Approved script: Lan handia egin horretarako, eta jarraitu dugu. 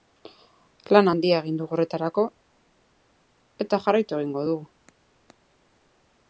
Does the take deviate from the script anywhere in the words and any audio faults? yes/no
yes